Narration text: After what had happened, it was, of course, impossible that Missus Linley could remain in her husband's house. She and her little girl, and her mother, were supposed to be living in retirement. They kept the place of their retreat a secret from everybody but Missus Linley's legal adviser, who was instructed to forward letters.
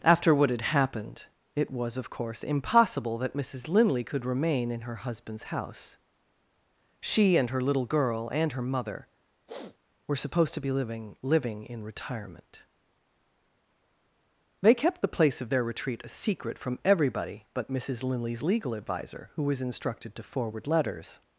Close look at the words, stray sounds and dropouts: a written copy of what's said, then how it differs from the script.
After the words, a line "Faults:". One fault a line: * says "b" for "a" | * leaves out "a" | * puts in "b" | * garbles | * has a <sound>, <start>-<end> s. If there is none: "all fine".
After what had happened, it was, of course, impossible that Missus Linley could remain in her husband's house. She and her little girl, and her mother, were supposed to be living living in retirement. They kept the place of their retreat a secret from everybody but Missus Linley's legal adviser, who was instructed to forward letters.
Faults:
* has a sniff, 9.5-9.8 s
* puts in "living"